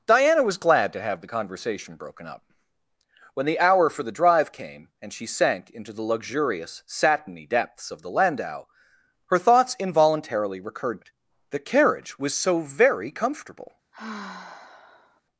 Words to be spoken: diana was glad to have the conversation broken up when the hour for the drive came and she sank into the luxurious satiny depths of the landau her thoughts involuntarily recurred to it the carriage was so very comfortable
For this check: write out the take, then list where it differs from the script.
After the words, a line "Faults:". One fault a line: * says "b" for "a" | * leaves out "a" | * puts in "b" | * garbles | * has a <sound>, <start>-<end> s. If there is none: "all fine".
diana was glad to have the conversation broken up when the hour for the drive came and she sank into the luxurious satiny depths of the landau her thoughts involuntarily recurred it the carriage was so very comfortable
Faults:
* leaves out "to"
* has a sigh, 13.9-15.2 s